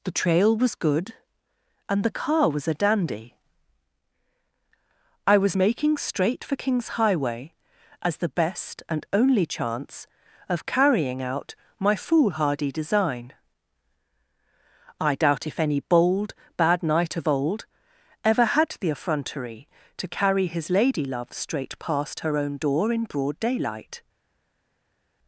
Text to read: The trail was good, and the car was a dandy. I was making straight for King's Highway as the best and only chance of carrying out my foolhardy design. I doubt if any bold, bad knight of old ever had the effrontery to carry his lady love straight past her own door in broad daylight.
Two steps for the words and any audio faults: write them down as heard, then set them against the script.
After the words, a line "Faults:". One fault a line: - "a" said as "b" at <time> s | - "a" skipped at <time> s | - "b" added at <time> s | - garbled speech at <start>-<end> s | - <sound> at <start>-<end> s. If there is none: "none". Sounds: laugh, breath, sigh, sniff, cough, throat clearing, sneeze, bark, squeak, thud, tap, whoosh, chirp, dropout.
The trail was good, and the car was a dandy. I was making straight for King's Highway as the best and only chance of carrying out my foolhardy design. I doubt if any bold, bad knight of old ever had the effrontery to carry his lady love straight past her own door in broad daylight.
Faults:
none